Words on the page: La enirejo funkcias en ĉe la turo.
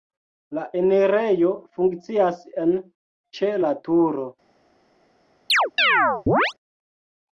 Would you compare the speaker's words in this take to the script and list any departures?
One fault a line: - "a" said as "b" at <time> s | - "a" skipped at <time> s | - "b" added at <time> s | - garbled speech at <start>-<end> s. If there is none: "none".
none